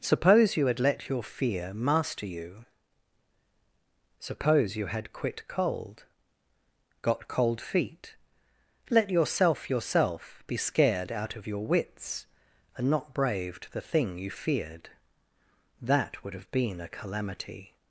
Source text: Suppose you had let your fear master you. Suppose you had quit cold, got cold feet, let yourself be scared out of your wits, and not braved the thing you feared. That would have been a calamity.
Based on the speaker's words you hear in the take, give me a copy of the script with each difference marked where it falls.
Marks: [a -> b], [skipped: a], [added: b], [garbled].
Suppose you had let your fear master you. Suppose you had quit cold, got cold feet, let yourself [added: yourself] be scared out of your wits, and not braved the thing you feared. That would have been a calamity.